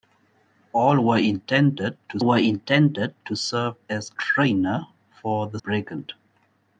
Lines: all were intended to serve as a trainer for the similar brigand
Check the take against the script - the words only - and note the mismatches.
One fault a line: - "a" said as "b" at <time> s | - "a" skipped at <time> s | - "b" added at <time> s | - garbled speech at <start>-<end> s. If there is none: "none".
- "were intended to" added at 2.2 s
- "a" skipped at 4.1 s
- "similar" skipped at 5.6 s